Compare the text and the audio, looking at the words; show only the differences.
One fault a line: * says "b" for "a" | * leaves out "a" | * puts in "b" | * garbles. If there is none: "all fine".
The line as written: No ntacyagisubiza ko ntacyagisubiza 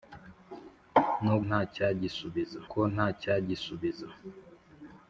all fine